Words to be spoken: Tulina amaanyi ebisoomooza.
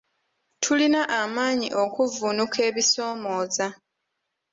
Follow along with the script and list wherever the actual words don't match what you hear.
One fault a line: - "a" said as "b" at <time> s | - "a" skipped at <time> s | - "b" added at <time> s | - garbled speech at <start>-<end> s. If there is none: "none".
- "okuvvuunuka" added at 1.8 s